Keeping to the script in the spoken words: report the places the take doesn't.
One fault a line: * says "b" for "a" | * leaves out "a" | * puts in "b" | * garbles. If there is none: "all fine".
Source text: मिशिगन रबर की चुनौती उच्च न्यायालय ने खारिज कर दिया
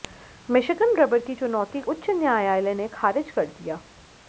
all fine